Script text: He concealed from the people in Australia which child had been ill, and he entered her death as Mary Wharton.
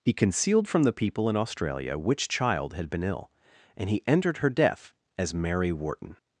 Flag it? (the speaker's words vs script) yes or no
no